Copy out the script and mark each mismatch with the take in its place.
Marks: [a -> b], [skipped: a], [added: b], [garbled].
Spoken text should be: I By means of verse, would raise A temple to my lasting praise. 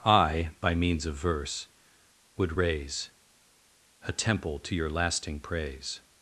I By means of verse, would raise A temple to [my -> your] lasting praise.